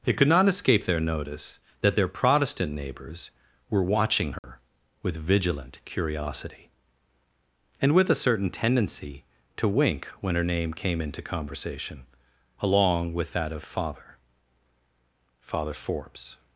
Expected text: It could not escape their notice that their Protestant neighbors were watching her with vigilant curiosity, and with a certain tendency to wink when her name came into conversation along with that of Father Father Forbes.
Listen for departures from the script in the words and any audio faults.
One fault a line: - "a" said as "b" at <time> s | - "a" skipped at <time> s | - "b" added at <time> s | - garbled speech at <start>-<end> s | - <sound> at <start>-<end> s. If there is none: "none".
- dropout at 4.4-4.4 s